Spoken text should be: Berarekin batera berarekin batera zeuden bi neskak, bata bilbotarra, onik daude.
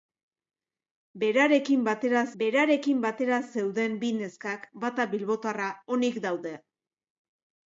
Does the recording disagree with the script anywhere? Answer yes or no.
no